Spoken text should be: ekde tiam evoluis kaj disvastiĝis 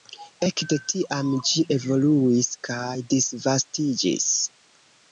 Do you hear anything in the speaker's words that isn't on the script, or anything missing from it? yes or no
yes